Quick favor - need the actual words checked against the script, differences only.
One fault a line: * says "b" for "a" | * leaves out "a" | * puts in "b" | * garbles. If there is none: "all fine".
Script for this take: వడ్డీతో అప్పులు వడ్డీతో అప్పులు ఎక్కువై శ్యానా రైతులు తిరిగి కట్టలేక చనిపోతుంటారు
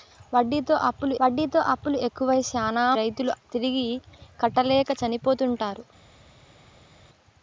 all fine